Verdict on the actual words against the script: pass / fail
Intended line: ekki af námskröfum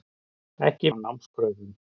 pass